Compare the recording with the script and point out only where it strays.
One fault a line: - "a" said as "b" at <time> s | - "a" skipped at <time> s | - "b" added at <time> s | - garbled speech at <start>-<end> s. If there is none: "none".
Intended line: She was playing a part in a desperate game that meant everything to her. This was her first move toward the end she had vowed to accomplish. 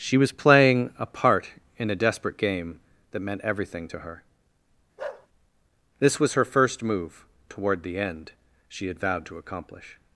none